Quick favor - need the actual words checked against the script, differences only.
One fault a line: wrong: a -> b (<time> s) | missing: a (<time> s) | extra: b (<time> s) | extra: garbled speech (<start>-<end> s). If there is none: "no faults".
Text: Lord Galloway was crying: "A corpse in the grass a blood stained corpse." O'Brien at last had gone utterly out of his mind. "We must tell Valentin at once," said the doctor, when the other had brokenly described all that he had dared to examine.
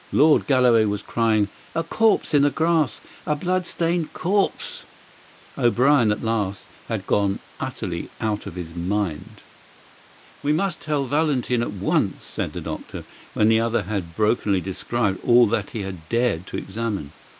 no faults